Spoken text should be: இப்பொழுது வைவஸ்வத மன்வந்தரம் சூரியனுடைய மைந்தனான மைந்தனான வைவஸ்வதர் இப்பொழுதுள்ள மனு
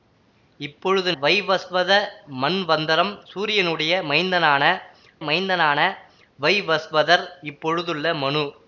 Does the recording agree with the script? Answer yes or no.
yes